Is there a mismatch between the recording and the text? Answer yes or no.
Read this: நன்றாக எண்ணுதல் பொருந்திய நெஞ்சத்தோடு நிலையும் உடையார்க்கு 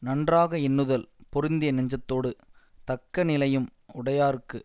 yes